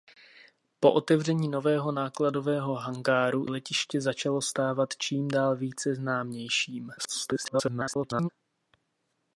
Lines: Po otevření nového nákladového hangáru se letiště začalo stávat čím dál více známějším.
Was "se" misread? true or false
true